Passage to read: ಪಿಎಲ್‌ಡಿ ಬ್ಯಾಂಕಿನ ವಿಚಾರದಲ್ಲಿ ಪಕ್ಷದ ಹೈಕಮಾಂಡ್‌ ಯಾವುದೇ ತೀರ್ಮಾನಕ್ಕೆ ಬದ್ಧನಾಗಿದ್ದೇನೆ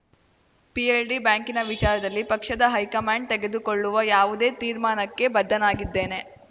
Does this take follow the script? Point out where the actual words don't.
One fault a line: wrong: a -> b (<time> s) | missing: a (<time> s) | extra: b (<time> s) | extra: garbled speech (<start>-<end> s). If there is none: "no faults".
extra: ತೆಗೆದುಕೊಳ್ಳುವ (3.3 s)